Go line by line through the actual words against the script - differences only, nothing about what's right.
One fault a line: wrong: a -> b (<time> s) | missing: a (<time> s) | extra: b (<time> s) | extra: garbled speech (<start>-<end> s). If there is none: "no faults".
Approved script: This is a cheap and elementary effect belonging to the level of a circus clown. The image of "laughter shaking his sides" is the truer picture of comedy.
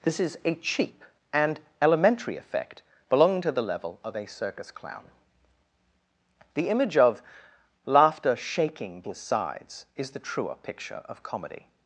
no faults